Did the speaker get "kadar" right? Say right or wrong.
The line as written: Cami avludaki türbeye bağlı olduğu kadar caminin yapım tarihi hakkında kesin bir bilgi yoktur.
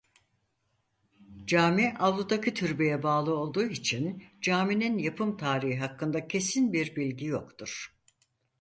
wrong